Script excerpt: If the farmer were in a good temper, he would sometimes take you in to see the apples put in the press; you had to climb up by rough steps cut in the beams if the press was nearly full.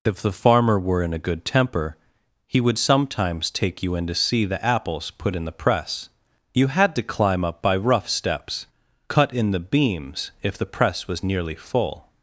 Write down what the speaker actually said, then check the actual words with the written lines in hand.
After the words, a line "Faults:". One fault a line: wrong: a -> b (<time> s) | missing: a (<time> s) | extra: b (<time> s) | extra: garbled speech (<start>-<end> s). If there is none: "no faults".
If the farmer were in a good temper, he would sometimes take you in to see the apples put in the press; you had to climb up by rough steps cut in the beams if the press was nearly full.
Faults:
no faults